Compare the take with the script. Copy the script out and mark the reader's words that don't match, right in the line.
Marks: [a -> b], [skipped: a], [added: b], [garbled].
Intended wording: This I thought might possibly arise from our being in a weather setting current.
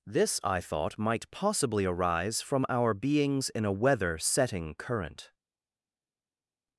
This I thought might possibly arise from our [being -> beings] in a weather setting current.